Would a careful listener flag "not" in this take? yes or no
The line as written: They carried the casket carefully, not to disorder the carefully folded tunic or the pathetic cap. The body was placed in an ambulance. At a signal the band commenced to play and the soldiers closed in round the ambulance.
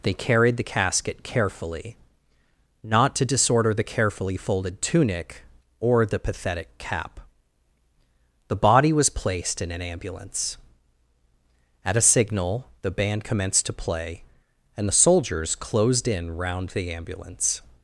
no